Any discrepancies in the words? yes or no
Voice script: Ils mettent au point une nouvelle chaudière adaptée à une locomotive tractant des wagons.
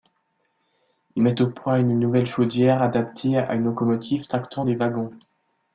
no